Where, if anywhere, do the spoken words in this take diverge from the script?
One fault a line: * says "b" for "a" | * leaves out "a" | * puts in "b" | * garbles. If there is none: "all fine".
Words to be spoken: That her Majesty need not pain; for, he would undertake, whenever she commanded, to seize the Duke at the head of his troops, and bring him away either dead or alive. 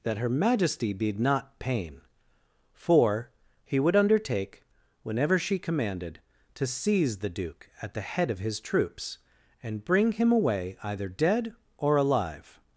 all fine